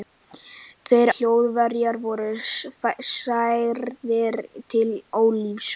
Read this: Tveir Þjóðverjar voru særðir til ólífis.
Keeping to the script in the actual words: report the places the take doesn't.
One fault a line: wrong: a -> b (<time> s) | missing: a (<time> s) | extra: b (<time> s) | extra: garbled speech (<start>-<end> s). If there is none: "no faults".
no faults